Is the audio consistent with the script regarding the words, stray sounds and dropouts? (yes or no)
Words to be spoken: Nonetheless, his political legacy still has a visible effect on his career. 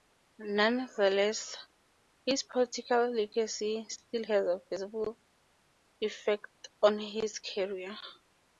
yes